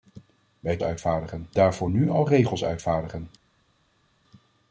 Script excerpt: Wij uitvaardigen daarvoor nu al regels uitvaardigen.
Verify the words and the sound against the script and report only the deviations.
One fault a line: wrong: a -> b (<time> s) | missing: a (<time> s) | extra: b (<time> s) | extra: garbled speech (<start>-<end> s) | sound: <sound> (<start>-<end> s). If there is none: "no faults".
no faults